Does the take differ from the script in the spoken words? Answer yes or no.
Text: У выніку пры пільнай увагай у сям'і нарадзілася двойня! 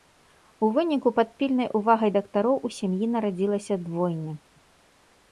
yes